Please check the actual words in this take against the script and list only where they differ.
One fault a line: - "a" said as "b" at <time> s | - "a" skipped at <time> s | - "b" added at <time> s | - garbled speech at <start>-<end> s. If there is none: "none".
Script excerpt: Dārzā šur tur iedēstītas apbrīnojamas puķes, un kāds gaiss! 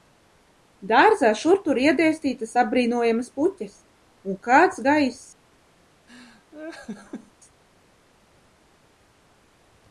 none